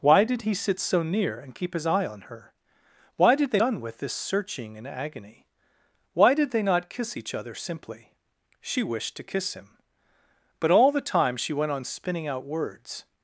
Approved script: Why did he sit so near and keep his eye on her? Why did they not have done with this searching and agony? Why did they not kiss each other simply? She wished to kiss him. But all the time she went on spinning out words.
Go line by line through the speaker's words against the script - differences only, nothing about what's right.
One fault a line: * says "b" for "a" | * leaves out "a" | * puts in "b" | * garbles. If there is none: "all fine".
* leaves out "not have"